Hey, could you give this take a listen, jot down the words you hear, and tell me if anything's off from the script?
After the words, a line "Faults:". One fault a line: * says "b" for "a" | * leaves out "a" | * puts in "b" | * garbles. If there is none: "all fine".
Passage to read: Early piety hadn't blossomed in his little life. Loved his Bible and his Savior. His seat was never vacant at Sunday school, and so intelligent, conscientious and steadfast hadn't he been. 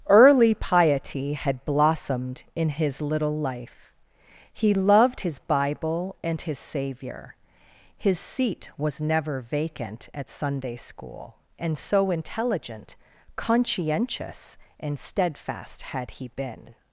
Early piety had blossomed in his little life. He loved his Bible and his Savior. His seat was never vacant at Sunday school, and so intelligent, conscientious and steadfast had he been.
Faults:
* says "had" for "hadn't"
* puts in "He"
* says "had" for "hadn't"